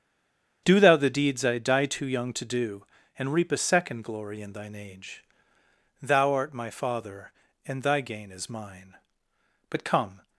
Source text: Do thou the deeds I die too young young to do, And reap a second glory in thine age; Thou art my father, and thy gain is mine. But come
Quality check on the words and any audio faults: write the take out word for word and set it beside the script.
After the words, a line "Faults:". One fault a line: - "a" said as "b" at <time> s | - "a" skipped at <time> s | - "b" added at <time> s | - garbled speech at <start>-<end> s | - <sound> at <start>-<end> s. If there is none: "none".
Do thou the deeds I die too young to do, And reap a second glory in thine age; Thou art my father, and thy gain is mine. But come
Faults:
- "young" skipped at 2.3 s